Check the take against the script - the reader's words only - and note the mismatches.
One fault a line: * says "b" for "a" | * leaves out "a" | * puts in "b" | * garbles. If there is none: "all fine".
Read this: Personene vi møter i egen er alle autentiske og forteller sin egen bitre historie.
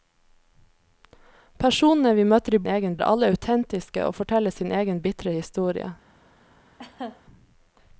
all fine